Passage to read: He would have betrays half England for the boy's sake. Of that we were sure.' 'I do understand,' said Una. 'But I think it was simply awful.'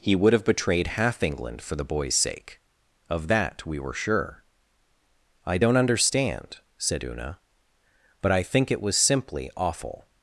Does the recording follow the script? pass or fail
fail